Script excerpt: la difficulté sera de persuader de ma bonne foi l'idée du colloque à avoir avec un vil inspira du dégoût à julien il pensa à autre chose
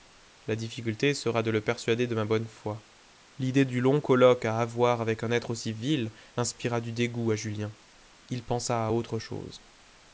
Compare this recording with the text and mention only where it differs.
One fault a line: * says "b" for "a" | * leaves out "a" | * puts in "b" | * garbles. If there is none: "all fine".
* puts in "le"
* puts in "long"
* puts in "être aussi"